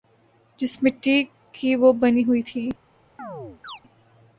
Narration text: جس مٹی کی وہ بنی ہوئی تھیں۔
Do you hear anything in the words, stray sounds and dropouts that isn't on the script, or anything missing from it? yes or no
yes